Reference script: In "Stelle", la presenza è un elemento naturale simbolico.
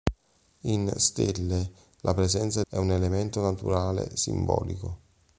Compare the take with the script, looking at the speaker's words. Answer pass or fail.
pass